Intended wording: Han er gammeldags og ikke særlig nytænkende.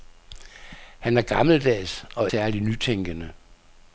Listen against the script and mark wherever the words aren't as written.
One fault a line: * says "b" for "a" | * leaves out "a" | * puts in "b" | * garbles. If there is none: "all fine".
* leaves out "ikke"